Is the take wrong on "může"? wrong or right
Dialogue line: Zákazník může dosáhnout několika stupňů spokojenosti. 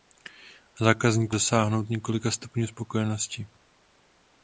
wrong